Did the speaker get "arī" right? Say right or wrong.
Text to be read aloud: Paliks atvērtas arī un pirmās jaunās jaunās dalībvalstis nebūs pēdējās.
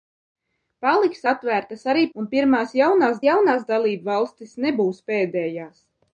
right